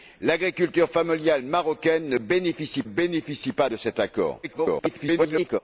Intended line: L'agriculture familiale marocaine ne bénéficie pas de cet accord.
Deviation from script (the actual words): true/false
true